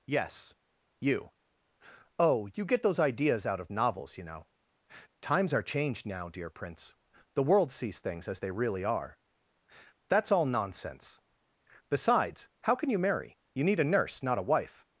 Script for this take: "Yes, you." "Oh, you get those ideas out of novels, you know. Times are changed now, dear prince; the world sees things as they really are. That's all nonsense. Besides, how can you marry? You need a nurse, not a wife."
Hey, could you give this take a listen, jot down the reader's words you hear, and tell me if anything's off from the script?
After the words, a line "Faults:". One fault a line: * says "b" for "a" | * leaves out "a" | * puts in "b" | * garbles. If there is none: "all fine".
"Yes, you." "Oh, you get those ideas out of novels, you know. Times are changed now, dear prince; the world sees things as they really are. That's all nonsense. Besides, how can you marry? You need a nurse, not a wife."
Faults:
all fine